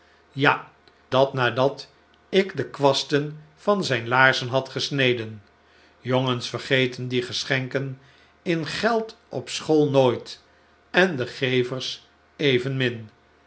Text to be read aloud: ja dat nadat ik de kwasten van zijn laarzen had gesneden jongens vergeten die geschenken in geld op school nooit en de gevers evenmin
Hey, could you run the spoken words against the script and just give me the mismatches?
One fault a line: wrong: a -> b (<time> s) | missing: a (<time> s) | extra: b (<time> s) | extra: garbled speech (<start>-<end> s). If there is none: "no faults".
no faults